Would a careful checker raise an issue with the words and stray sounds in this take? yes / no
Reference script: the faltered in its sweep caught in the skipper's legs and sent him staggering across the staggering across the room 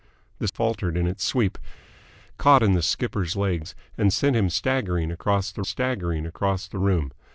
no